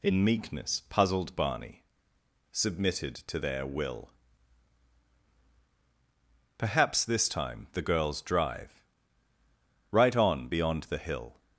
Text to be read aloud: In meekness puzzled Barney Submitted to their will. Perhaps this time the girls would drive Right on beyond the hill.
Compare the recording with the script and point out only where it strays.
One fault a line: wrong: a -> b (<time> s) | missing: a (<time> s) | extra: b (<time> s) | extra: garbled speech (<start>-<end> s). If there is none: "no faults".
missing: would (8.2 s)